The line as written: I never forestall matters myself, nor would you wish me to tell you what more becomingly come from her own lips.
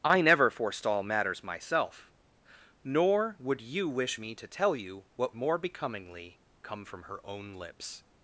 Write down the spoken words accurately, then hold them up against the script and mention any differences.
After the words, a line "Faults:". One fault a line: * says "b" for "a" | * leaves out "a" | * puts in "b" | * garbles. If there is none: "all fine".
I never forestall matters myself, nor would you wish me to tell you what more becomingly come from her own lips.
Faults:
all fine